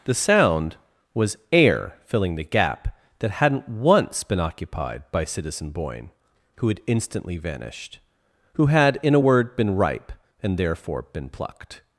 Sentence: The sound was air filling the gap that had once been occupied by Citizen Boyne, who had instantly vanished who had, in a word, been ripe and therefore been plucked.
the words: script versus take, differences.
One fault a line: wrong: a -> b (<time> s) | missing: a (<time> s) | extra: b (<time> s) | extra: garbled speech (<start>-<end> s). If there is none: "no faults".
wrong: had -> hadn't (3.3 s)